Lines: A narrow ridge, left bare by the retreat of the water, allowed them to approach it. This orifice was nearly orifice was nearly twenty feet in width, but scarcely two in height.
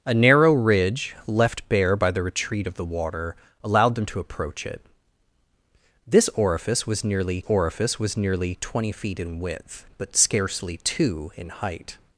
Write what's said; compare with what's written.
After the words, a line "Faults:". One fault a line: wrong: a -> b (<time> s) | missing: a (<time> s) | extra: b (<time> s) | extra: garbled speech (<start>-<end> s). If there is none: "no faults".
A narrow ridge, left bare by the retreat of the water, allowed them to approach it. This orifice was nearly orifice was nearly twenty feet in width, but scarcely two in height.
Faults:
no faults